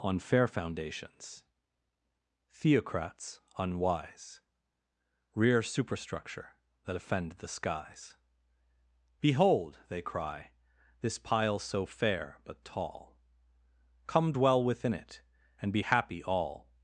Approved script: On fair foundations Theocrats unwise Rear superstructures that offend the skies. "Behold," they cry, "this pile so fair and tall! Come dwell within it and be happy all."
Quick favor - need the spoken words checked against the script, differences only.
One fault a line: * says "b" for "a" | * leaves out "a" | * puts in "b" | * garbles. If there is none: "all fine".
* says "superstructure" for "superstructures"
* says "but" for "and"